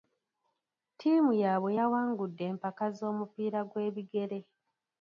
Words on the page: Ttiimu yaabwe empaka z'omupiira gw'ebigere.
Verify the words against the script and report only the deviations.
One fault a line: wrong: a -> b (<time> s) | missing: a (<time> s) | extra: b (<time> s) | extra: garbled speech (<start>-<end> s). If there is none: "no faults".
extra: yawangudde (1.8 s)